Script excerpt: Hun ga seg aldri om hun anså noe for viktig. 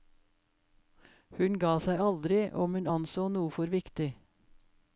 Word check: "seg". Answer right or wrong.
right